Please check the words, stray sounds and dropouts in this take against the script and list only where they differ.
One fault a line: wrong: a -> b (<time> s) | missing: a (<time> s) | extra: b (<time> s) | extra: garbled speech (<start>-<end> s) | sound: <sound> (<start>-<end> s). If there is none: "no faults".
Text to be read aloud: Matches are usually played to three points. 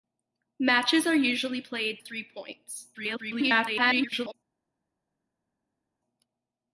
missing: to (2.0 s)
extra: garbled speech (2.9-4.3 s)